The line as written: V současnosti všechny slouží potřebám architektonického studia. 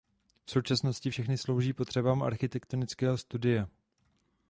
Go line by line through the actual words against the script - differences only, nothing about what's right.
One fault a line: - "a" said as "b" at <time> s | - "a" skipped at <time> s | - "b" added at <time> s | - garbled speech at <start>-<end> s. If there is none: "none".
none